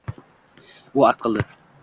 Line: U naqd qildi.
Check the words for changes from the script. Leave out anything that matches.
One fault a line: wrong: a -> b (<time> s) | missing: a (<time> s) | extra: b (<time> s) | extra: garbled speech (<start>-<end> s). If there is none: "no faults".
no faults